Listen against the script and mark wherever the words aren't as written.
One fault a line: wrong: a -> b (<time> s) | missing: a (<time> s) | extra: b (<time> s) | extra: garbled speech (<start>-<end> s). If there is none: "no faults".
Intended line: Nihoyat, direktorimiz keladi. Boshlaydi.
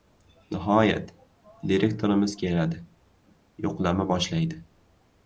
extra: Yo‘qlama (3.7 s)